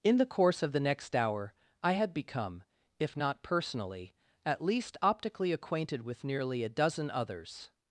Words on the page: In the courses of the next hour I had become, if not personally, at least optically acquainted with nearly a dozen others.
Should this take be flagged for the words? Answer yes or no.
yes